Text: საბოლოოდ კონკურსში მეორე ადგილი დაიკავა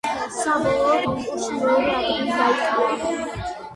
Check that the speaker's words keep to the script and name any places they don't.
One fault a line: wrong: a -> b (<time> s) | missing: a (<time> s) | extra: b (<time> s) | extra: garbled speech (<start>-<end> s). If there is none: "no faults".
no faults